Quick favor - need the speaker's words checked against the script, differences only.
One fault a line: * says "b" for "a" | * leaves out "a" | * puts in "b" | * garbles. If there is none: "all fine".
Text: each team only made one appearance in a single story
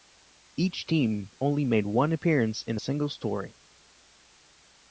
all fine